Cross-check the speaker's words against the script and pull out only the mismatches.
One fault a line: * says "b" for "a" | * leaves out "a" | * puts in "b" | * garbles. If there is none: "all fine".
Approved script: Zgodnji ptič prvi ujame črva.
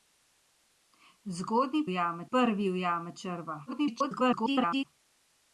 * says "ujame" for "ptič"
* garbles